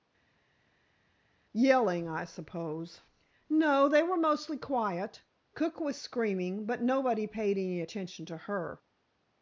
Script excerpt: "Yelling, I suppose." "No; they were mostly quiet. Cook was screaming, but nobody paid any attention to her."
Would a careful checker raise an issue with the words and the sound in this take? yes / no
no